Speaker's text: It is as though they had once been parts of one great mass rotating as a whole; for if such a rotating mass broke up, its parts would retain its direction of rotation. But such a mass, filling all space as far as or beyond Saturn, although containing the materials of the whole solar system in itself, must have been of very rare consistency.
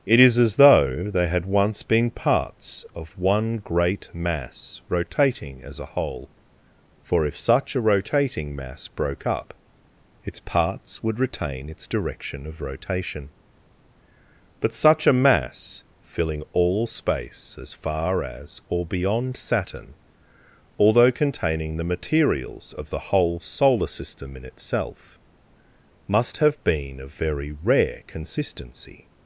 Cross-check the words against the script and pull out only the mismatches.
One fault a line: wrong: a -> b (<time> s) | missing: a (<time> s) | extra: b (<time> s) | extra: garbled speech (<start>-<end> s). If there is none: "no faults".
no faults